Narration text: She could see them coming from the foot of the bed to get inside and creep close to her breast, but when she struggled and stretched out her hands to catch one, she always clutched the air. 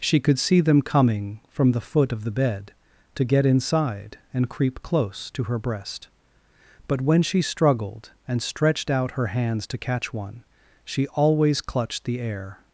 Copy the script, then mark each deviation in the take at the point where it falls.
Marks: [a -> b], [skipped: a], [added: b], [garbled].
She could see them coming from the foot of the bed to get inside and creep close to her breast, but when she struggled and stretched out her hands to catch one, she always clutched the air.